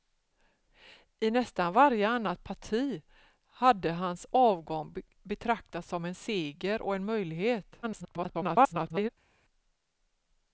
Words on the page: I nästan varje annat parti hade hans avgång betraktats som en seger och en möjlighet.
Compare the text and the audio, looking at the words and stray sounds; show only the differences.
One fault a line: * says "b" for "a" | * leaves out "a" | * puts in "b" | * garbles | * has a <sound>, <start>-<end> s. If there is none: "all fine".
* garbles